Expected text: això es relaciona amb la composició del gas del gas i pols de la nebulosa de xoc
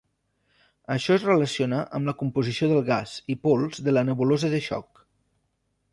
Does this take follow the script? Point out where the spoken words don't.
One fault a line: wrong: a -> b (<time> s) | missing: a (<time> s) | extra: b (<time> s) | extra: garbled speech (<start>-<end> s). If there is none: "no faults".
missing: del gas (3.1 s)